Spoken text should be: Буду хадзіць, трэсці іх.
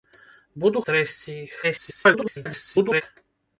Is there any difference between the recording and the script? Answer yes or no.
yes